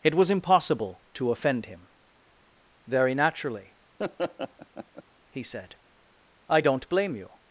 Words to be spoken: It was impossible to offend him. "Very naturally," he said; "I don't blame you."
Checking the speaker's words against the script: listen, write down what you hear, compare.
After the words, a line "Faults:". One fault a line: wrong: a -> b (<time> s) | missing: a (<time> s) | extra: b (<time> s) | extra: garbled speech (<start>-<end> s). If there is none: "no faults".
It was impossible to offend him. "Very naturally," he said; "I don't blame you."
Faults:
no faults